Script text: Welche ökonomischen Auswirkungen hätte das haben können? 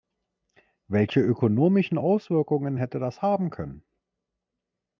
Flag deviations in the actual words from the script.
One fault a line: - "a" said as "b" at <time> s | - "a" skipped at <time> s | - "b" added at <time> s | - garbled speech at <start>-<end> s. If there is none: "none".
none